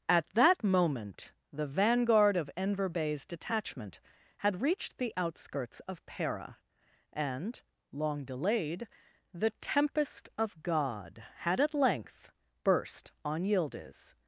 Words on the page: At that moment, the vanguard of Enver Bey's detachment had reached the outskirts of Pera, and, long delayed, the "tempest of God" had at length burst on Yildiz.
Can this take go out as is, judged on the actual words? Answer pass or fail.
pass